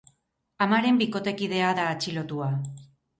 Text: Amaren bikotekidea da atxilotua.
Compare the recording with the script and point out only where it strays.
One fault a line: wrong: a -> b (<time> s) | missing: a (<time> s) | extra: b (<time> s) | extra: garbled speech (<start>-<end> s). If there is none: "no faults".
no faults